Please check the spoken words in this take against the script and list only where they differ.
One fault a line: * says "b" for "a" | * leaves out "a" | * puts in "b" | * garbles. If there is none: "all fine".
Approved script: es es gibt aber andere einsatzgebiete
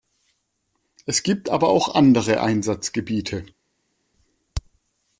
* leaves out "es"
* puts in "auch"